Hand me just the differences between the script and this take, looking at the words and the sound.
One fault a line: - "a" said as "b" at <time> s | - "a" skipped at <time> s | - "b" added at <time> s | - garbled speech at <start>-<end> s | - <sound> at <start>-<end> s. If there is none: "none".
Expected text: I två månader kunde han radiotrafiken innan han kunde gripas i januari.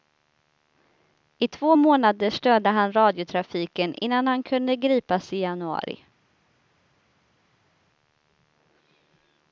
- "kunde" said as "störde" at 2.3 s